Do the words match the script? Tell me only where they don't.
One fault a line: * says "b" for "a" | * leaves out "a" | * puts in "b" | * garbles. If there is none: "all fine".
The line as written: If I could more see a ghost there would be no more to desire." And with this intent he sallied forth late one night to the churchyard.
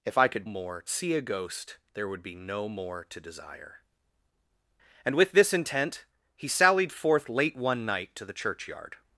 all fine